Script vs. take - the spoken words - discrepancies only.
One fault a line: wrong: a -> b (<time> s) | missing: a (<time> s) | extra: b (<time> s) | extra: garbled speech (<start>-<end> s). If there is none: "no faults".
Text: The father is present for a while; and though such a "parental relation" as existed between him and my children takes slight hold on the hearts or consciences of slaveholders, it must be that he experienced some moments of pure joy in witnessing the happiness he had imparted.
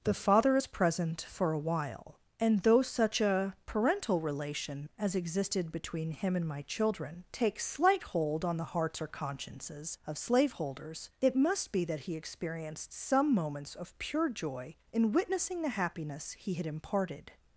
no faults